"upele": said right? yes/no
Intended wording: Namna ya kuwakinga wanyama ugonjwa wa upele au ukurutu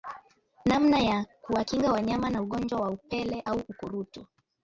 yes